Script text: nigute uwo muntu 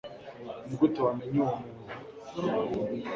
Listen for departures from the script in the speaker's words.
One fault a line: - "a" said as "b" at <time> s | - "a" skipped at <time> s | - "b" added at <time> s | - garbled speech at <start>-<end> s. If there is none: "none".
- "wamenye" added at 1.1 s